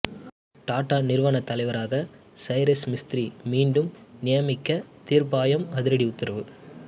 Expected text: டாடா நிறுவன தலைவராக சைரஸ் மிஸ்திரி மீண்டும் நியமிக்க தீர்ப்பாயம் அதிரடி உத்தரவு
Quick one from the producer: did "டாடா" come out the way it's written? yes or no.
yes